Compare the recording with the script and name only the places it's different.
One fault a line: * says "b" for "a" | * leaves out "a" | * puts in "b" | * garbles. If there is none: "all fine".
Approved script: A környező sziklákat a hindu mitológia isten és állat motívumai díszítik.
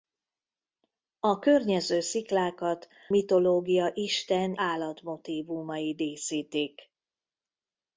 * leaves out "a hindu"
* leaves out "és"